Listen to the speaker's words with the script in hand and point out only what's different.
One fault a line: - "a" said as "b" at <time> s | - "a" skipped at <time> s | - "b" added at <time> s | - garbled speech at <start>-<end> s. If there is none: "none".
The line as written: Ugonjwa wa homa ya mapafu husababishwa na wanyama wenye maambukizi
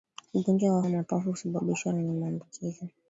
- "homa" skipped at 0.8 s
- "na wanyama" skipped at 1.9 s